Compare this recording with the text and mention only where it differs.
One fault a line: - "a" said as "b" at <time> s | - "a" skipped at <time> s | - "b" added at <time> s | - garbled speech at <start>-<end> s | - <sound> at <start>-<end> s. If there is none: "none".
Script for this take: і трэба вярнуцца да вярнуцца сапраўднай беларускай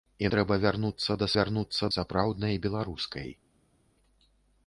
none